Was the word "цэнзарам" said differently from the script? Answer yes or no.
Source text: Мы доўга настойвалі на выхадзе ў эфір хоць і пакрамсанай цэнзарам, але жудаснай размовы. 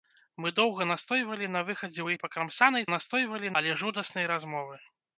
yes